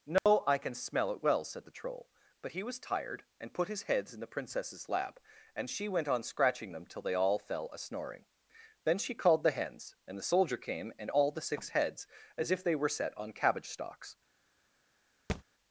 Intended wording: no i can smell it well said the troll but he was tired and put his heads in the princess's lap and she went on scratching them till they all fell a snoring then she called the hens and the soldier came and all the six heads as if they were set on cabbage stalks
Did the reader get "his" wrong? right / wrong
right